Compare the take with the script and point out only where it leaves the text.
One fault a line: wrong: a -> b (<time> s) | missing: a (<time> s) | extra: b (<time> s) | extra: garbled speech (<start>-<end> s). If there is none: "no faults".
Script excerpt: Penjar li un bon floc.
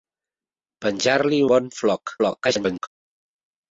missing: un (1.4 s)
extra: garbled speech (2.2-2.9 s)